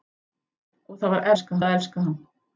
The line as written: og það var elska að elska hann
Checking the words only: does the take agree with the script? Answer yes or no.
yes